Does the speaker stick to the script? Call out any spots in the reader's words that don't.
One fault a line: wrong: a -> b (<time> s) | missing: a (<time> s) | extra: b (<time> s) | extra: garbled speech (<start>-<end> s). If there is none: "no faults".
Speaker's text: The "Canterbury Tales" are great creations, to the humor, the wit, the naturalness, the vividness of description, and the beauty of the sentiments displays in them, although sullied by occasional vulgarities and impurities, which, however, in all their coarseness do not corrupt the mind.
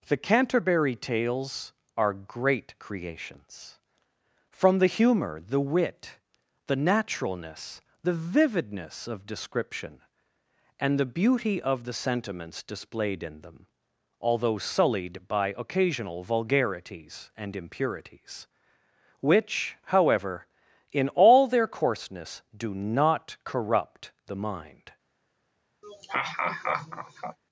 wrong: to -> from (4.5 s)
wrong: displays -> displayed (12.6 s)